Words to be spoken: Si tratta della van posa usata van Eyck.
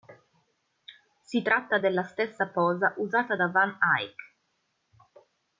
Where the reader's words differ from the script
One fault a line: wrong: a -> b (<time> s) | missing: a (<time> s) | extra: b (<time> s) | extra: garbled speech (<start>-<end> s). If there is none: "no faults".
wrong: van -> stessa (2.0 s)
extra: da (3.3 s)